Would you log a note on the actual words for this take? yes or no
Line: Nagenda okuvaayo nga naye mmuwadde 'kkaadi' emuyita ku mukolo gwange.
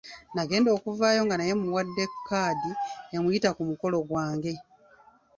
no